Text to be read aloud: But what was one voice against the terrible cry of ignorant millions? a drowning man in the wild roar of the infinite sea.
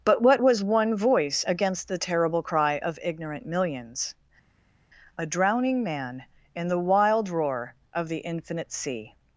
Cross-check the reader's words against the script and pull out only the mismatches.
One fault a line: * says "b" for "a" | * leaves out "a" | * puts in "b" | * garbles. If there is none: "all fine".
all fine